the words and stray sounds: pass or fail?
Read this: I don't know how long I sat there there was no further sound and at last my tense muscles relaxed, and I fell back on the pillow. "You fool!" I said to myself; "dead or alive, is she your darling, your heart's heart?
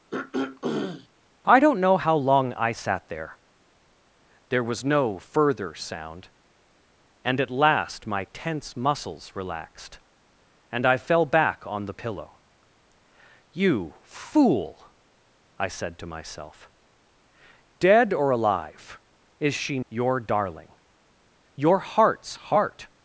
fail